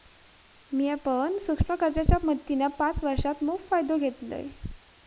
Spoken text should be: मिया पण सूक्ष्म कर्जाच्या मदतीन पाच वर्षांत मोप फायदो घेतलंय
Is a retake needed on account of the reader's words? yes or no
no